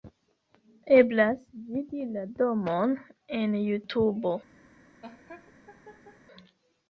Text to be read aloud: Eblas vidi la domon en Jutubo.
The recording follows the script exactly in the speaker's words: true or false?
true